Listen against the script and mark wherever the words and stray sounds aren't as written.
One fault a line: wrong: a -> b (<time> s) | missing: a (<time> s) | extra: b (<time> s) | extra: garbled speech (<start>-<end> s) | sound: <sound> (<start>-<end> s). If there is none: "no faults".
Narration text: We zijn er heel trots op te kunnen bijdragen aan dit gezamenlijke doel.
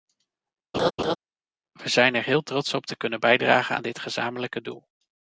sound: laugh (0.7-1.2 s)